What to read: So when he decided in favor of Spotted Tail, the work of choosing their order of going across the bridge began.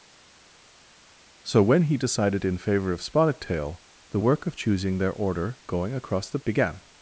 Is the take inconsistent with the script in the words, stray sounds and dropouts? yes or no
yes